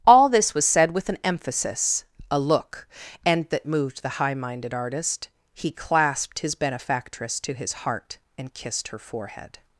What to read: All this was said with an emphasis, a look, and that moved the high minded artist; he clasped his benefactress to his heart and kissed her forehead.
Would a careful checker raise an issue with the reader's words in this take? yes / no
no